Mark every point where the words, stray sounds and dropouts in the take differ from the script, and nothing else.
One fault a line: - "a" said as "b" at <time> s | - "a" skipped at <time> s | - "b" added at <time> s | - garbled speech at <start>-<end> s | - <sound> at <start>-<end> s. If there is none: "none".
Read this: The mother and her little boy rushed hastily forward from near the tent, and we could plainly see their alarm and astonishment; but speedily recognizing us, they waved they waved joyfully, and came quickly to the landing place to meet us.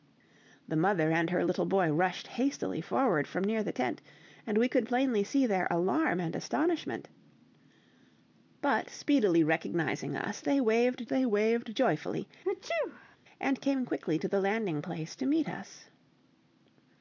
- sneeze at 12.4-13.2 s